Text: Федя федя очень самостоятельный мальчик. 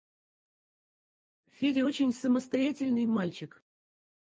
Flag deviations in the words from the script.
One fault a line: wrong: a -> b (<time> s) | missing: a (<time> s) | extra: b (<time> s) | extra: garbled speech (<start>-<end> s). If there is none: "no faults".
missing: федя (1.9 s)